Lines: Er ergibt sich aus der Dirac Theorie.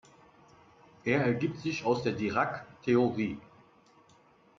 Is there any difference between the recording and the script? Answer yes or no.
no